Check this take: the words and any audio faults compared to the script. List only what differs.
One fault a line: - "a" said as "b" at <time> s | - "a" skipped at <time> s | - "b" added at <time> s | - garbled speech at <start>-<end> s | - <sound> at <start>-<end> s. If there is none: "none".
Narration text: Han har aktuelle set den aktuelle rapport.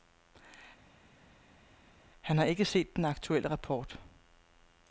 - "aktuelle" said as "ikke" at 2.4 s